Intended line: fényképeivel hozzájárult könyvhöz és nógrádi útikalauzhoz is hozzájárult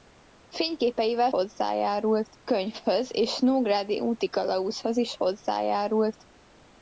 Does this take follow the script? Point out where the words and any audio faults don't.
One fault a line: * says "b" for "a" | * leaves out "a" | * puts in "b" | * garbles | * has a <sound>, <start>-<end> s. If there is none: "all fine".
all fine